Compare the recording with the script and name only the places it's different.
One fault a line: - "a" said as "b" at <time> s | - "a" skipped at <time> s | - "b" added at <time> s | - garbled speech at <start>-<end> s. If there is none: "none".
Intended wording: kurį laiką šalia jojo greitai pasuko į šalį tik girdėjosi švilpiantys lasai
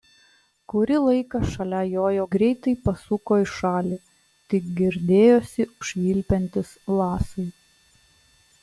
none